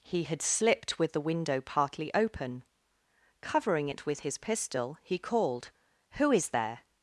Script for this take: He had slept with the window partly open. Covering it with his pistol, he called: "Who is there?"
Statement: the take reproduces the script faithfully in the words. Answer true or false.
false